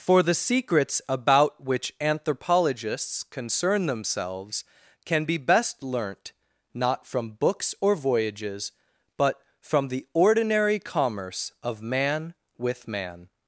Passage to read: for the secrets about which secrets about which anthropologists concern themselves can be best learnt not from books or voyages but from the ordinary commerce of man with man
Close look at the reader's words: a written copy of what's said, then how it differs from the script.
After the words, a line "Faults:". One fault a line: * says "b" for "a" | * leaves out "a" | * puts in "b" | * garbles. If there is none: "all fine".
for the secrets about which anthropologists concern themselves can be best learnt not from books or voyages but from the ordinary commerce of man with man
Faults:
* leaves out "secrets about which"